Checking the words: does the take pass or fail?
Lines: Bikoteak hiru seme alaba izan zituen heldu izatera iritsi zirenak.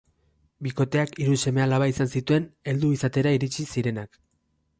pass